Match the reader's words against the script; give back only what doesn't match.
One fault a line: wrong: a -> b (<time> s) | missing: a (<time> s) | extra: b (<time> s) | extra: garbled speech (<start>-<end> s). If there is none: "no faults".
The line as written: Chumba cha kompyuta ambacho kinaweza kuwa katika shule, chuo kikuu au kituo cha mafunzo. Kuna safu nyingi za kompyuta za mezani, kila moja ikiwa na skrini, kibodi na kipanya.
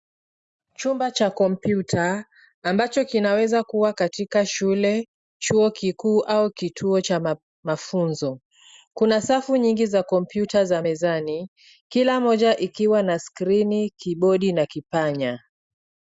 no faults